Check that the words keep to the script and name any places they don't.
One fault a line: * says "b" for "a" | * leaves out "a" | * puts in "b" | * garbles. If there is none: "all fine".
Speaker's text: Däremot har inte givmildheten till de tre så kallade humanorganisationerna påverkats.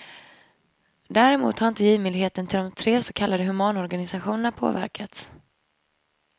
all fine